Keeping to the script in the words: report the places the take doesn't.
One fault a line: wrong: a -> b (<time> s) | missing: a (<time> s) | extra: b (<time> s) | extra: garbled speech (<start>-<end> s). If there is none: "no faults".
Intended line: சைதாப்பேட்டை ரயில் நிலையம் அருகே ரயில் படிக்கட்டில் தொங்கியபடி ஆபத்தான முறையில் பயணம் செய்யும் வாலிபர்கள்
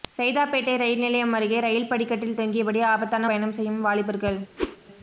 missing: முறையில் (3.3 s)